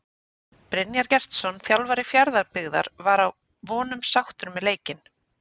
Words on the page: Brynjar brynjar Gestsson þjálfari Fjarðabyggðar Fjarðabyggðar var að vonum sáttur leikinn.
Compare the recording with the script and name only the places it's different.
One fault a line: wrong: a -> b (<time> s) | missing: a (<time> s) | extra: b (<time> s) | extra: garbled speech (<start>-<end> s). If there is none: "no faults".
missing: brynjar (1.1 s)
missing: Fjarðabyggðar (2.9 s)
extra: með (4.6 s)